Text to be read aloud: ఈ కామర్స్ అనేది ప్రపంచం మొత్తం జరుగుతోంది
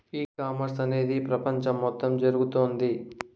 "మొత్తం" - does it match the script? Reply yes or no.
yes